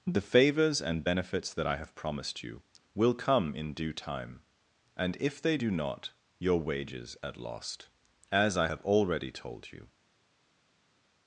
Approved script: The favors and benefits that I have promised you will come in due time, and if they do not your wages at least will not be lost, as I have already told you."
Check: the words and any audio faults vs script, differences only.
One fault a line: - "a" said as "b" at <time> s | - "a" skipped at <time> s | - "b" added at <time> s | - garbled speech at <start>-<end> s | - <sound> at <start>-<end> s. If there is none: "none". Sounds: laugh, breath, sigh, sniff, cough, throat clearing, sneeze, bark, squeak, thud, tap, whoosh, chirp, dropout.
- "least will not be" skipped at 7.4 s